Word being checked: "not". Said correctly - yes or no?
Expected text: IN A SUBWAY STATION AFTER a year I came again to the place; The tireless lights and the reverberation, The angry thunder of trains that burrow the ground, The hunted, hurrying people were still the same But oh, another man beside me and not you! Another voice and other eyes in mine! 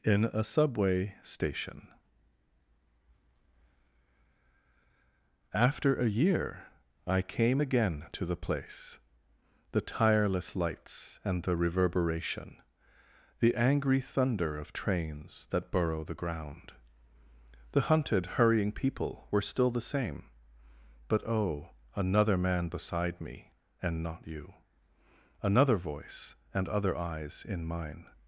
yes